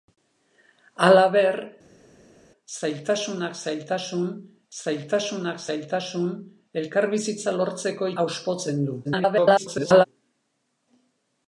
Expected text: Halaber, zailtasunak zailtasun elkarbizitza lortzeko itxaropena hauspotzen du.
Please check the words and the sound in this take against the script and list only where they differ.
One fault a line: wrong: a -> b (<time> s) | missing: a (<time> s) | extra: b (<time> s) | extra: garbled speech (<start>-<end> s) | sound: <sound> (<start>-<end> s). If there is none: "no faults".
extra: zailtasunak zailtasun (4.8 s)
missing: itxaropena (8.1 s)
extra: garbled speech (9.0-10.1 s)